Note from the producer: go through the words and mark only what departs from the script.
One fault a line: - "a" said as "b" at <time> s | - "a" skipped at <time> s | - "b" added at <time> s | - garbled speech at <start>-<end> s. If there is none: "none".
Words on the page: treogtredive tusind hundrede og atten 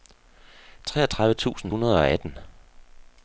none